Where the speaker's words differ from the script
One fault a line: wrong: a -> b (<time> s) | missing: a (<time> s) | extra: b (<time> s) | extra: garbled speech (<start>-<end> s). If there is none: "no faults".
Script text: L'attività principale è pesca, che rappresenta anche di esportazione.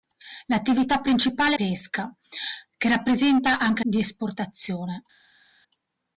no faults